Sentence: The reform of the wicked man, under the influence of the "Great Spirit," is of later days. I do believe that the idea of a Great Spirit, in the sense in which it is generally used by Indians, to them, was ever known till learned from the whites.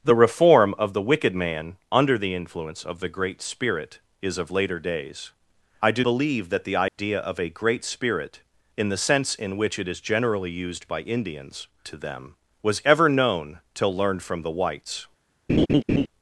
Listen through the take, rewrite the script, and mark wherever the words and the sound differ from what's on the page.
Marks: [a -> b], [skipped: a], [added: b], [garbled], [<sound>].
The reform of the wicked man, under the influence of the "Great Spirit," is of later days. I do believe that the idea [dropout] of a Great Spirit, in the sense in which it is generally used by Indians, to them, was ever known till learned from the whites. [laugh]